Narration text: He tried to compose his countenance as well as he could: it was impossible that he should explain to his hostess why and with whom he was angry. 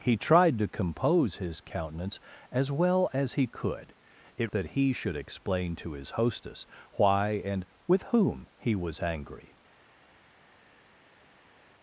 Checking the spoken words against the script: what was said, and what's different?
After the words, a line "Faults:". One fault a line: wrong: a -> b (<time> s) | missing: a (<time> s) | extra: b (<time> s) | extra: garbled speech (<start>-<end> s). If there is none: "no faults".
He tried to compose his countenance as well as he could: it that he should explain to his hostess why and with whom he was angry.
Faults:
missing: was impossible (4.5 s)